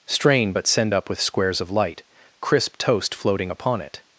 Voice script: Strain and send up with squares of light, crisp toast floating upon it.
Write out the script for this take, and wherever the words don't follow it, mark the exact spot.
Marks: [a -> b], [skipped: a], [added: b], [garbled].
Strain [and -> but] send up with squares of light, crisp toast floating upon it.